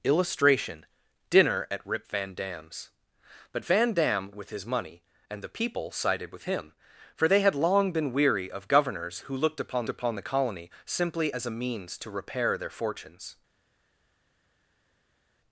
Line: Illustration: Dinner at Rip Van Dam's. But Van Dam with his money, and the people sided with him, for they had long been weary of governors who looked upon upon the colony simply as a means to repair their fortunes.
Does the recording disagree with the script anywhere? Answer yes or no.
no